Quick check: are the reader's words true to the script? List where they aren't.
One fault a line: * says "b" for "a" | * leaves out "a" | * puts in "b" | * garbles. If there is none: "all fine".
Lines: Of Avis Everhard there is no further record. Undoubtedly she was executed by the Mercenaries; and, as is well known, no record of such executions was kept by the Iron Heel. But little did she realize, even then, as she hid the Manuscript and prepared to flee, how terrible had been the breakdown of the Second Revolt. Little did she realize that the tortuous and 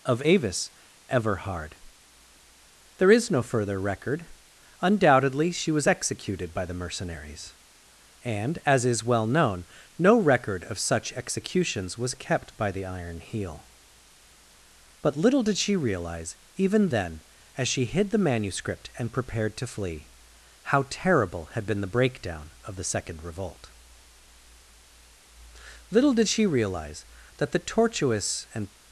all fine